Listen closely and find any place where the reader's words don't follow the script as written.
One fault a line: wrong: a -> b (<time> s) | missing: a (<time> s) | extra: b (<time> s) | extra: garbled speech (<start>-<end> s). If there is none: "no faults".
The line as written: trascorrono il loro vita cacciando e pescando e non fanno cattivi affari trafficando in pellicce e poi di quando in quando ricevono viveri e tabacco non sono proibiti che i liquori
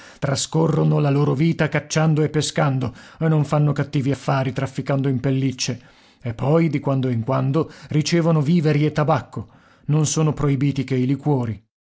wrong: il -> la (1.0 s)